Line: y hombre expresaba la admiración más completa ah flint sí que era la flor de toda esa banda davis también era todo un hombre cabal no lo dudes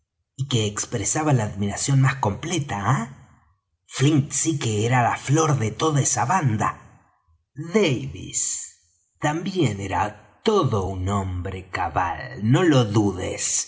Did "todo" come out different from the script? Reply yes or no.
no